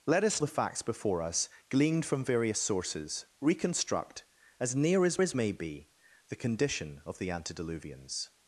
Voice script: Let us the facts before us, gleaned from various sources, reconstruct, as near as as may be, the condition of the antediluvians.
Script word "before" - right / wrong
right